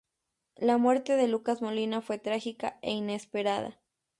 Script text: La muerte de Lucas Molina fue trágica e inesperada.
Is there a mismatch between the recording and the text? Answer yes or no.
no